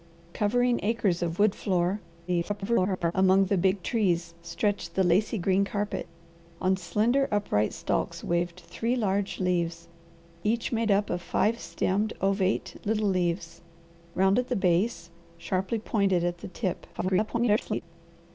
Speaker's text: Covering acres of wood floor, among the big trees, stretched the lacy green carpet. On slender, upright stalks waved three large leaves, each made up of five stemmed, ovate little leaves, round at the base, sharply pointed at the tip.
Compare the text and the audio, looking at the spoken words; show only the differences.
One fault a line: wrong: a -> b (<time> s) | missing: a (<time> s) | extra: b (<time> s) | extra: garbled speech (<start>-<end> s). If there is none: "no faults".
extra: garbled speech (2.3-3.1 s)
extra: garbled speech (16.9-17.8 s)